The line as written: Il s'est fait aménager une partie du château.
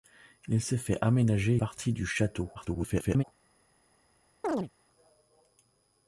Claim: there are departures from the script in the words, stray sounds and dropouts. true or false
true